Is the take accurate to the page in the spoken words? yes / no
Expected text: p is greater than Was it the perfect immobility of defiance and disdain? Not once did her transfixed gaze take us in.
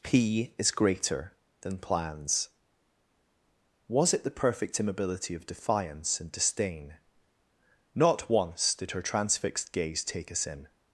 no